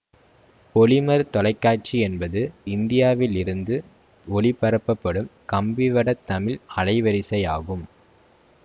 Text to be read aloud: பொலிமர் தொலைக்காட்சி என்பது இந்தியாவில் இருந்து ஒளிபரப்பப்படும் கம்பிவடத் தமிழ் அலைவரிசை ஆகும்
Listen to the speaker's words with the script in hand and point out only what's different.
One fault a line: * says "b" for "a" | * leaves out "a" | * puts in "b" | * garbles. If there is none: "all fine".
all fine